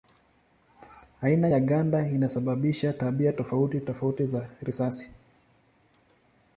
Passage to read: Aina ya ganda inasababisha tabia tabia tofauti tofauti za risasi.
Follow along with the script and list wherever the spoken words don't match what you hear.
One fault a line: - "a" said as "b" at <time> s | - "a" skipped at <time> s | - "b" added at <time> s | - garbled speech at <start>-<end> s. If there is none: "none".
- "tabia" skipped at 3.3 s